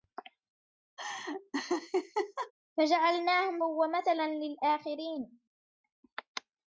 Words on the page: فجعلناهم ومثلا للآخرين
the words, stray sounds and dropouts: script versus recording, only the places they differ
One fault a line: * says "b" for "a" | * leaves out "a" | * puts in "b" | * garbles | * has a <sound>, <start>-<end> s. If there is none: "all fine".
* has a laugh, 1.0-2.5 s